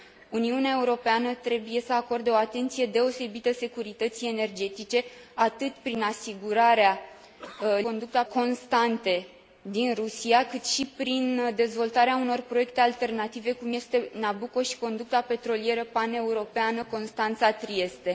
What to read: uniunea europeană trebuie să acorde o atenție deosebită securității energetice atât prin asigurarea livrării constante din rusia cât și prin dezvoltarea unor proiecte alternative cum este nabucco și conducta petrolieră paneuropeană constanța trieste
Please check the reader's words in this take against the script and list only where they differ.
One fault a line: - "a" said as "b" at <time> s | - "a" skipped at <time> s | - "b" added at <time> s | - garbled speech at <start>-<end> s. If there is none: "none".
- "livrării" said as "conducta" at 7.8 s